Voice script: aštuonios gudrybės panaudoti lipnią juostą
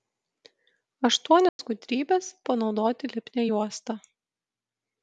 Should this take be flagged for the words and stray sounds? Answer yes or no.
yes